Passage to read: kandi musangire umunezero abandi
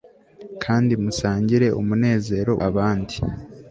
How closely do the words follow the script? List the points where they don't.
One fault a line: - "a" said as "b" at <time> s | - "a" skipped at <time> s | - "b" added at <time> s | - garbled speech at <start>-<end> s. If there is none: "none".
none